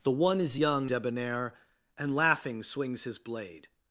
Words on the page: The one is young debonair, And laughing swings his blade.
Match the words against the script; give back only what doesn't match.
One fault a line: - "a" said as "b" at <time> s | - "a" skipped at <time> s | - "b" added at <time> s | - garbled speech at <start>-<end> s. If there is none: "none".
none